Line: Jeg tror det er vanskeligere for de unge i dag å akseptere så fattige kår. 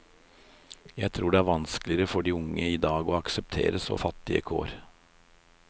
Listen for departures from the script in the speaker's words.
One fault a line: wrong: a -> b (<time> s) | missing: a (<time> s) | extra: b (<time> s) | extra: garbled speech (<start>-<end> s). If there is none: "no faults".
no faults